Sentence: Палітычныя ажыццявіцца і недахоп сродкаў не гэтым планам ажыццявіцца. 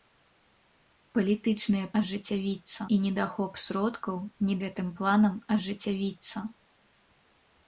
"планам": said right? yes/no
yes